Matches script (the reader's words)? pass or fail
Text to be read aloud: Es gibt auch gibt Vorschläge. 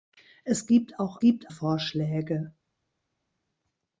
pass